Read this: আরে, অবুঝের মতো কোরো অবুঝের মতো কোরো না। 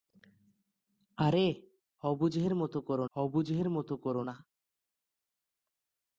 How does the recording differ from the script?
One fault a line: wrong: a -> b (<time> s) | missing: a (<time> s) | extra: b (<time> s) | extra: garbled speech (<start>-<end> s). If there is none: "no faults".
no faults